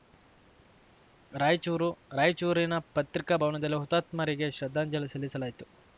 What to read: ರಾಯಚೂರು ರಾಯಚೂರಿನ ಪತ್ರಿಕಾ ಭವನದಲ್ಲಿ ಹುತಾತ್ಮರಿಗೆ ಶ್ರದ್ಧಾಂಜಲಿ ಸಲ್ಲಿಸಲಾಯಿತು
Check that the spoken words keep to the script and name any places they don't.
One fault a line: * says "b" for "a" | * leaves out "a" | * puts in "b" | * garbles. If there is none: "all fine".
all fine